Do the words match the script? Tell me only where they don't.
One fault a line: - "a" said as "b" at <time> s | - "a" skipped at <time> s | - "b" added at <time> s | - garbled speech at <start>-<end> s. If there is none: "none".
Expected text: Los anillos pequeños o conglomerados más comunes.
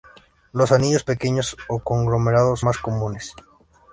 none